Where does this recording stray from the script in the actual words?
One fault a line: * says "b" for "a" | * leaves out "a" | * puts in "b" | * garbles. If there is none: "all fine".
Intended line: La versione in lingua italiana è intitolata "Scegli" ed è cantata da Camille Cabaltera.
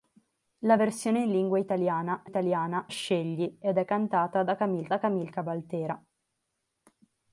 * says "italiana" for "intitolata"
* puts in "da Camille"